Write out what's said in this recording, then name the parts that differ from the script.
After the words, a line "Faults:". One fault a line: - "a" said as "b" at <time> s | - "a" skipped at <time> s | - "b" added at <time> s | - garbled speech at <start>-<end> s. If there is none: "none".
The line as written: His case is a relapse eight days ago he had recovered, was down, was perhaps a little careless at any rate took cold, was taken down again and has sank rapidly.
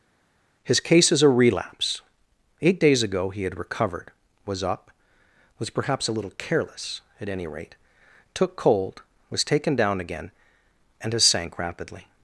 His case is a relapse eight days ago he had recovered, was up, was perhaps a little careless at any rate took cold, was taken down again and has sank rapidly.
Faults:
- "down" said as "up" at 4.6 s